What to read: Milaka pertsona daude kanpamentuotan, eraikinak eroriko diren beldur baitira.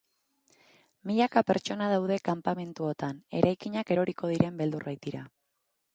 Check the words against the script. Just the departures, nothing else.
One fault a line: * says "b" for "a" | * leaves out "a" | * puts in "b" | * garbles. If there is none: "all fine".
all fine